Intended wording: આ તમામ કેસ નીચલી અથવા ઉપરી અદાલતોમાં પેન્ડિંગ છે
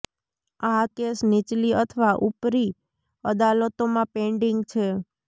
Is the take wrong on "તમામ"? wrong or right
wrong